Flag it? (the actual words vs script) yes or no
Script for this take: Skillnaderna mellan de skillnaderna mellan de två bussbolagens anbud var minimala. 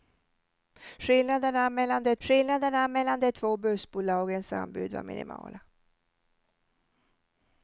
no